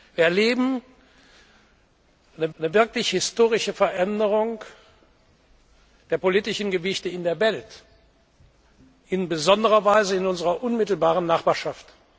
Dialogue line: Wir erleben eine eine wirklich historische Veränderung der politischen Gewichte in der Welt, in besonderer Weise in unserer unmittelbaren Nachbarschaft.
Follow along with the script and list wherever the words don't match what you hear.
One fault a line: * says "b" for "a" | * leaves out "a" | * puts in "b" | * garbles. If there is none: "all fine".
all fine